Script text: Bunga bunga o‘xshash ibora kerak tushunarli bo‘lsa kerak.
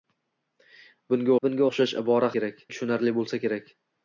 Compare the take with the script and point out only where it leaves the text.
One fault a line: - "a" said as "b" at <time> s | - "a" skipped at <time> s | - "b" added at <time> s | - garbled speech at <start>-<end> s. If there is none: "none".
none